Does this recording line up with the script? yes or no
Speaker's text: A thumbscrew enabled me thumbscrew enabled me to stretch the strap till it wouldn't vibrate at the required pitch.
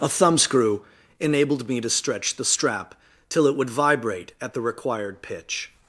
no